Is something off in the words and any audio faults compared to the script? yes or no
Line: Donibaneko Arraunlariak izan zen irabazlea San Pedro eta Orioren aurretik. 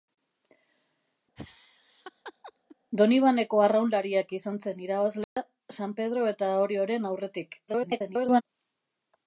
yes